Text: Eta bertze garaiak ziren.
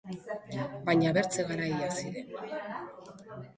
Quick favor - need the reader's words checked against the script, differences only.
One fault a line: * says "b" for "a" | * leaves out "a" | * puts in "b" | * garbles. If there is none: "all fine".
* says "Baina" for "Eta"